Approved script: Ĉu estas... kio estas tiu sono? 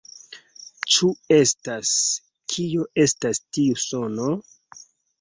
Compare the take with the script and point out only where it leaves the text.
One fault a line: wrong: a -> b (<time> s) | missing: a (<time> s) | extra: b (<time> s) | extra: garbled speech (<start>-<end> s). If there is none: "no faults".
no faults